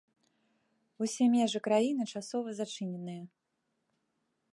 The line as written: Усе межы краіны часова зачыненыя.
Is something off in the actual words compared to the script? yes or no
no